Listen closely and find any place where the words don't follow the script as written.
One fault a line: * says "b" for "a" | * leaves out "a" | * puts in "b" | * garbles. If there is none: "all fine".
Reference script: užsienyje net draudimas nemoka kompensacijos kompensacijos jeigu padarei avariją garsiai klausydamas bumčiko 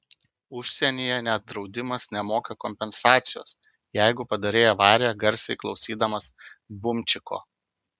* leaves out "kompensacijos"